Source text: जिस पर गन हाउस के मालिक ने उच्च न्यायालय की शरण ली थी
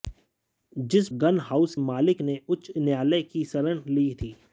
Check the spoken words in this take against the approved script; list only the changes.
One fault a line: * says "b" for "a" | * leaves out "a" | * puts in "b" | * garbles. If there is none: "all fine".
* leaves out "पर"
* leaves out "के"